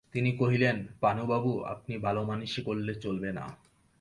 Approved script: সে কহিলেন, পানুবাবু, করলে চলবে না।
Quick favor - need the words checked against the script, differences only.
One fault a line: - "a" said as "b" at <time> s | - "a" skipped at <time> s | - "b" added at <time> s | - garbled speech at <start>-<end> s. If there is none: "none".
- "সে" said as "তিনি" at 0.1 s
- "আপনি ভালোমানষি" added at 1.6 s